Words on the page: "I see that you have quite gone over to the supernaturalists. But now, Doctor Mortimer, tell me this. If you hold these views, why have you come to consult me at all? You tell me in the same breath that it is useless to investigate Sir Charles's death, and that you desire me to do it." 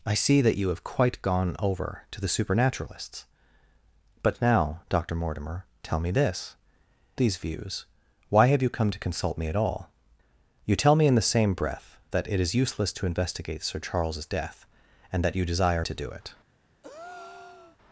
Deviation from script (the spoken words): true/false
true